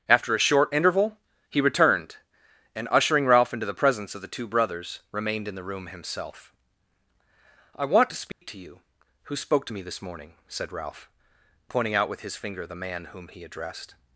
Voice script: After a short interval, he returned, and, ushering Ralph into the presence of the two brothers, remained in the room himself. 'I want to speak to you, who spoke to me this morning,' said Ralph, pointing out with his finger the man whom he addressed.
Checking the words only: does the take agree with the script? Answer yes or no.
yes